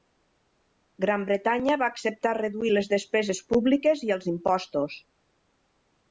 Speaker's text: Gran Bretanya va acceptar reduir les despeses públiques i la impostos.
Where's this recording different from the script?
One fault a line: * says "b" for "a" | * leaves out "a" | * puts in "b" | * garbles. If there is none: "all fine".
* says "els" for "la"